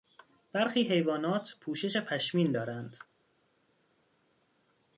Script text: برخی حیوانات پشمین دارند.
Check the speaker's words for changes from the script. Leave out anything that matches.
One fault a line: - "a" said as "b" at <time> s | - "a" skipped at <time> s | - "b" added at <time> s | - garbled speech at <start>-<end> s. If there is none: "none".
- "پوشش" added at 1.6 s